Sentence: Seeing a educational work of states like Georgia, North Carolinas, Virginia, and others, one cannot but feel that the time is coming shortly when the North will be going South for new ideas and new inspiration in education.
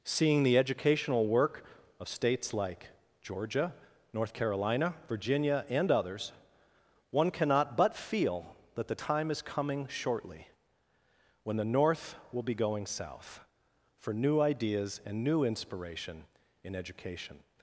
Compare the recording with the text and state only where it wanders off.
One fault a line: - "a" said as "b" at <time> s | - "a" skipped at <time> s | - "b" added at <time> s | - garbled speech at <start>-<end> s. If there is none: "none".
- "a" said as "the" at 0.4 s
- "Carolinas" said as "Carolina" at 4.3 s